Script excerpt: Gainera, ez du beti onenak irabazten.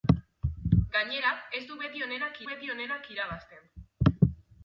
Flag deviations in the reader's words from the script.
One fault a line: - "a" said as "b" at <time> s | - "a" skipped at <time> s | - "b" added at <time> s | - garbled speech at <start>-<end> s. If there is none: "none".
- "beti onenak" added at 2.5 s